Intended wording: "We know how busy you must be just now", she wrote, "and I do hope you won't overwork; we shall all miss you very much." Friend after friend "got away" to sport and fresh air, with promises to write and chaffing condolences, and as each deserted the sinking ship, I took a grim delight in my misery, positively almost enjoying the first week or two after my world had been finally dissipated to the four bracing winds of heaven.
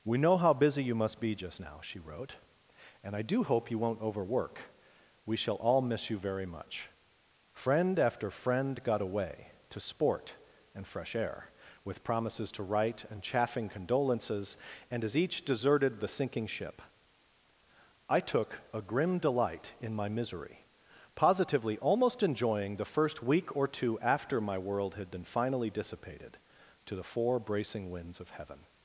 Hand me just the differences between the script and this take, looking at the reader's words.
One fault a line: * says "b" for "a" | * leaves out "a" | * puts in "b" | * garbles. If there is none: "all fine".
all fine